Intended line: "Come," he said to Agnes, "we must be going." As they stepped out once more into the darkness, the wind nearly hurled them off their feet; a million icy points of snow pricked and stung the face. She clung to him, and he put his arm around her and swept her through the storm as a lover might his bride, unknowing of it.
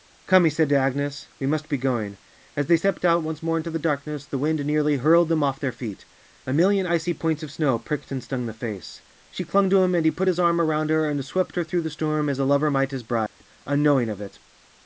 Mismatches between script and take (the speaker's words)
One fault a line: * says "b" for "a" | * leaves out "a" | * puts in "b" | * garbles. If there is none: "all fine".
all fine